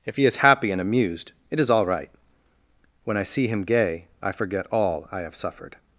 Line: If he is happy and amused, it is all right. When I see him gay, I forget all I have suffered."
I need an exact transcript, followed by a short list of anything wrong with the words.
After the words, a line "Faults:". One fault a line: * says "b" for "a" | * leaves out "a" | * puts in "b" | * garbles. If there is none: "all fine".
If he is happy and amused, it is all right. When I see him gay, I forget all I have suffered."
Faults:
all fine